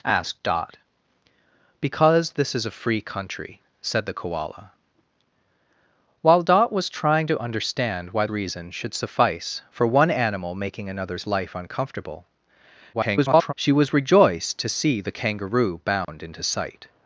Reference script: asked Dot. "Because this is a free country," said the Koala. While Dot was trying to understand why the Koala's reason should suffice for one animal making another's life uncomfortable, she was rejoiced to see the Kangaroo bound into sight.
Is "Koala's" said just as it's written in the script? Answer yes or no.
no